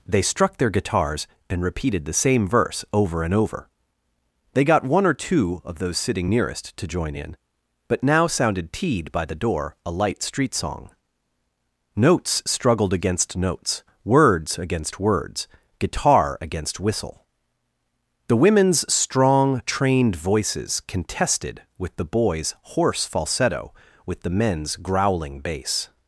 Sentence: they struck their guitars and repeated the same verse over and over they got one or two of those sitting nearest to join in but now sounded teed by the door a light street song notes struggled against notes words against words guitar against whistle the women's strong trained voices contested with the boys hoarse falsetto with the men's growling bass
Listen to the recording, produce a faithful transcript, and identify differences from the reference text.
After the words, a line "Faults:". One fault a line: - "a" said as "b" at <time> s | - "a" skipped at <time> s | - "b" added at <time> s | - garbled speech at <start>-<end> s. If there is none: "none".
they struck their guitars and repeated the same verse over and over they got one or two of those sitting nearest to join in but now sounded teed by the door a light street song notes struggled against notes words against words guitar against whistle the women's strong trained voices contested with the boys hoarse falsetto with the men's growling bass
Faults:
none